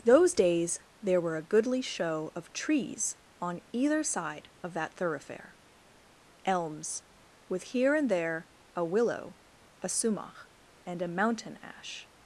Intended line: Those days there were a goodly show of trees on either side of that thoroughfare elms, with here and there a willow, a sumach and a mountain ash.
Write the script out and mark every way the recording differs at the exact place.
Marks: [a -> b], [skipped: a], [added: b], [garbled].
Those days there were a goodly show of trees on either side of that thoroughfare elms, with here and there a willow, a sumach and a mountain ash.